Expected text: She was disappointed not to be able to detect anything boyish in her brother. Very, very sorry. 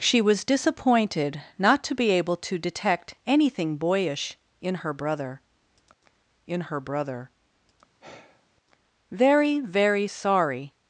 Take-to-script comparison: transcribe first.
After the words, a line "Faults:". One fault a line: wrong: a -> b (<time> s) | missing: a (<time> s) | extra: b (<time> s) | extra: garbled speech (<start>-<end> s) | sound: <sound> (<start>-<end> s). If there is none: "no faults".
She was disappointed not to be able to detect anything boyish in her brother in her brother. Very, very sorry.
Faults:
extra: in her brother (6.4 s)
sound: sigh (8.0-8.5 s)